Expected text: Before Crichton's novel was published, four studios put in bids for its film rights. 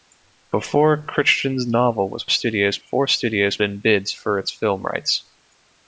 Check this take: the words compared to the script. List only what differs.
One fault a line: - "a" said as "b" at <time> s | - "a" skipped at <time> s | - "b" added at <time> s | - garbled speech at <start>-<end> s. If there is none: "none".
- "published" said as "studios" at 2.3 s
- "put" skipped at 3.6 s